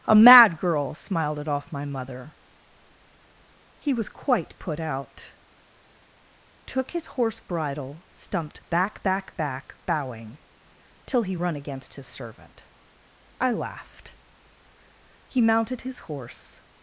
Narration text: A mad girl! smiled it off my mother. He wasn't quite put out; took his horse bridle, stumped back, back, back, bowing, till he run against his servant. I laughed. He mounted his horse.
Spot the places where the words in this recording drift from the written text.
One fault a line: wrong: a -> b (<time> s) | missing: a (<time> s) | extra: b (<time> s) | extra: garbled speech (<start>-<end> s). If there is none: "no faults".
wrong: wasn't -> was (3.9 s)